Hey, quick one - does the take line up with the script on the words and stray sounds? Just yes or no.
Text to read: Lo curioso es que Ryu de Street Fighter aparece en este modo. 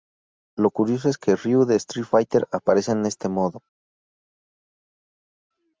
yes